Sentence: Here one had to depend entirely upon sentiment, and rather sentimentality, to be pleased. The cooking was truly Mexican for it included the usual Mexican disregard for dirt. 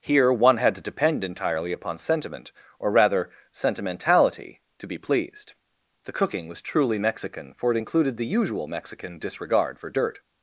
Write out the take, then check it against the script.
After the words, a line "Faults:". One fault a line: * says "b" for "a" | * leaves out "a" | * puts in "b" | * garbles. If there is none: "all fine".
Here one had to depend entirely upon sentiment, or rather sentimentality, to be pleased. The cooking was truly Mexican for it included the usual Mexican disregard for dirt.
Faults:
* says "or" for "and"